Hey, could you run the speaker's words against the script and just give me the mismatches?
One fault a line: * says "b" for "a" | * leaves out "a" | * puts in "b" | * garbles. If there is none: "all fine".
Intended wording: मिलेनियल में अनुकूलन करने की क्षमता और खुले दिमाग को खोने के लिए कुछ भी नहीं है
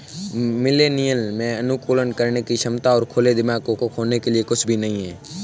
* puts in "को"